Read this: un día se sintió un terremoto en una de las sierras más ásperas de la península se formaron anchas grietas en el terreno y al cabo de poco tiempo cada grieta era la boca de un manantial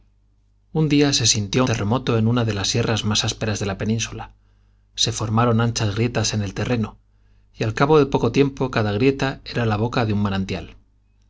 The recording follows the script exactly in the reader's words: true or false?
false